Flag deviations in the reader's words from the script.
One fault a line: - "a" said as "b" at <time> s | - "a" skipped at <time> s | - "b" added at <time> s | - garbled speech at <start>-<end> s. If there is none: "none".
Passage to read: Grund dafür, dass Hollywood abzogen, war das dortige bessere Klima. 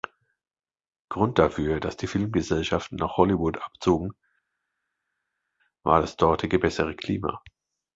- "die Filmgesellschaften nach" added at 1.9 s